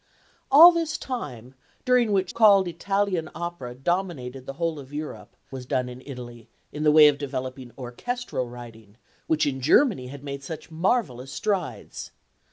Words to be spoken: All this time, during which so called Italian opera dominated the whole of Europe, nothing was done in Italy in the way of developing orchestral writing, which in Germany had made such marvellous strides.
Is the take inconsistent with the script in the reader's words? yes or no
yes